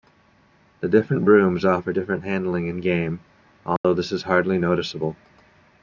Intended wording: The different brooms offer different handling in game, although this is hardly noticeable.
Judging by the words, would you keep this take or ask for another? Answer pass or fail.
pass